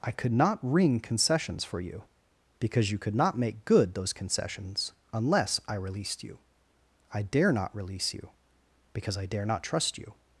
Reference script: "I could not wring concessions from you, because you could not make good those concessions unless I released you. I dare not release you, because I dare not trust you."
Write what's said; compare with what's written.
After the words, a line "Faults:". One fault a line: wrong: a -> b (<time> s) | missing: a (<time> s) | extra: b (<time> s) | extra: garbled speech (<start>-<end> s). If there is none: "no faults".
"I could not wring concessions for you, because you could not make good those concessions unless I released you. I dare not release you, because I dare not trust you."
Faults:
wrong: from -> for (1.6 s)